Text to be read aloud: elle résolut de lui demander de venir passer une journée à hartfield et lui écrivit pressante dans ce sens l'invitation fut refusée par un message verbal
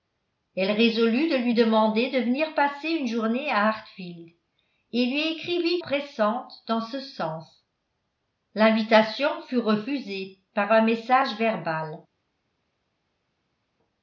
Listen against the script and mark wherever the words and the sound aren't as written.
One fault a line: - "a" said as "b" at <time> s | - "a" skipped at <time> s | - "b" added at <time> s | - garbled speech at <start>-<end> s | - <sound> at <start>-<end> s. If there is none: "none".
none